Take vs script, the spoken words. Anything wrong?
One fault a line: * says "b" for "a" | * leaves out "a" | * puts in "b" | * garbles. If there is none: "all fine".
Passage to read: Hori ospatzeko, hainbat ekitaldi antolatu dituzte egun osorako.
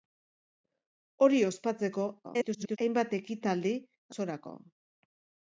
* garbles
* leaves out "antolatu dituzte egun"